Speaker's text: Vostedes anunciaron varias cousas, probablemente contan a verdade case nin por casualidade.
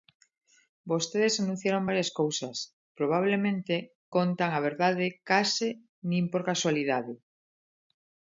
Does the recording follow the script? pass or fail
pass